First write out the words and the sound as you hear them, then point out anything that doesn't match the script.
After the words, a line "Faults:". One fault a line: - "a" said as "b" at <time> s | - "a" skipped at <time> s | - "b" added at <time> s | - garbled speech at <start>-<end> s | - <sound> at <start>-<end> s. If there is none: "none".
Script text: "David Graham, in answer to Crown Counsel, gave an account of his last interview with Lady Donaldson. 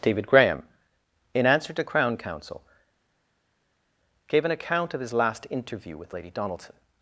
"David Graham, in answer to Crown Counsel, gave an account of his last interview with Lady Donaldson.
Faults:
none